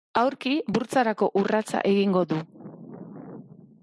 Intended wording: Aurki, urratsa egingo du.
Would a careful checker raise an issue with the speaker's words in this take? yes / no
yes